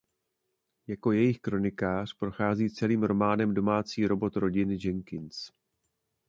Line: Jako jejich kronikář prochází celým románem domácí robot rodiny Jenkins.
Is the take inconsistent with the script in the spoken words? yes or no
no